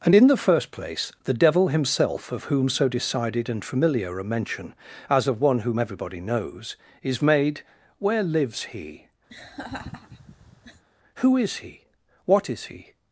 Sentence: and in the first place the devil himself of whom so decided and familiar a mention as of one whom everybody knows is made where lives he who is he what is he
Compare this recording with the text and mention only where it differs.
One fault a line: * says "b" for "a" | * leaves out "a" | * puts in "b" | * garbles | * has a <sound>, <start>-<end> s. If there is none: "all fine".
* has a laugh, 9.3-10.8 s